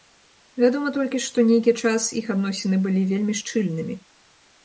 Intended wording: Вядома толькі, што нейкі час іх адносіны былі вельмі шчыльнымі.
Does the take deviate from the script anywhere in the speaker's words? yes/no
no